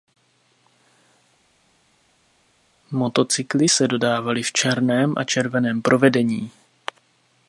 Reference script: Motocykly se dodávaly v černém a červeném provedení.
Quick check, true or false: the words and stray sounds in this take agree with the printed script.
true